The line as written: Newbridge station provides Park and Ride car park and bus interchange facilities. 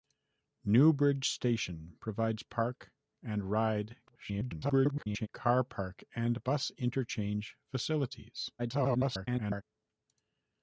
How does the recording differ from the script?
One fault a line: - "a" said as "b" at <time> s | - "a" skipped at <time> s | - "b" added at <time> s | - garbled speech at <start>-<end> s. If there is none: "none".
- garbled speech at 4.1-5.3 s
- garbled speech at 8.6-9.6 s